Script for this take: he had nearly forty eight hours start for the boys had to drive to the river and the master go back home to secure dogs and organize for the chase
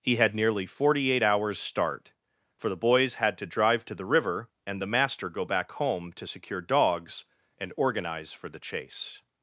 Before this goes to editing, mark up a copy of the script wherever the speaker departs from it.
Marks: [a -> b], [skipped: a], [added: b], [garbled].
he had nearly forty eight hours start for the boys had to drive to the river and the master go back home to secure dogs and organize for the chase